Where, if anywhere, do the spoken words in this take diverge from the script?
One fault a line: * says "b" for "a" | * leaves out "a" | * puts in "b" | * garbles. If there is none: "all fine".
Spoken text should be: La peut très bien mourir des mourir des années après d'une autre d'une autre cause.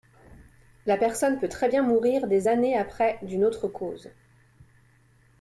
* puts in "personne"
* leaves out "mourir des"
* leaves out "d'une autre"